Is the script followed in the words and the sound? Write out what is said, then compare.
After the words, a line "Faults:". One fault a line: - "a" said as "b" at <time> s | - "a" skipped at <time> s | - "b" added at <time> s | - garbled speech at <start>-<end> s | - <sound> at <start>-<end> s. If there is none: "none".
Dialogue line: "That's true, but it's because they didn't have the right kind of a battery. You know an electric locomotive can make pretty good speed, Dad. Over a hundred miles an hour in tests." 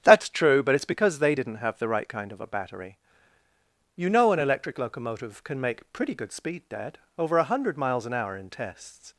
"That's true, but it's because they didn't have the right kind of a battery. You know an electric locomotive can make pretty good speed, Dad. Over a hundred miles an hour in tests."
Faults:
none